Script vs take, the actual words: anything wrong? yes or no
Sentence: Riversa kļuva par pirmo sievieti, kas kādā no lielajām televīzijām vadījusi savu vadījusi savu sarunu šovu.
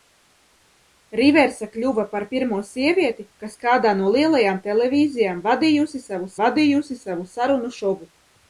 no